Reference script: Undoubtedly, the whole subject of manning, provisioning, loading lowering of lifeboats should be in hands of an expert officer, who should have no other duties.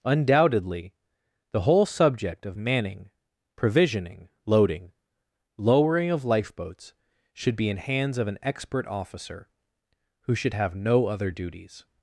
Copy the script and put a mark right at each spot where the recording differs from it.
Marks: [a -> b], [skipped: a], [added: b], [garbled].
Undoubtedly, the whole subject of manning, provisioning, loading lowering of lifeboats should be in hands of an expert officer, who should have no other duties.